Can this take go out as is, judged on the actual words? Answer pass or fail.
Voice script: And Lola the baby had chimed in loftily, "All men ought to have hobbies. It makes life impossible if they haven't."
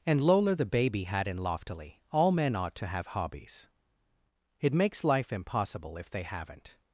fail